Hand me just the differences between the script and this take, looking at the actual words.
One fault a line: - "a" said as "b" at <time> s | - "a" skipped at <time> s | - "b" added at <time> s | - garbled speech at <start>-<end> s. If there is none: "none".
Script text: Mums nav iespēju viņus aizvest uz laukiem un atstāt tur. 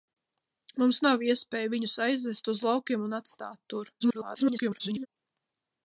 - garbled speech at 4.0-5.1 s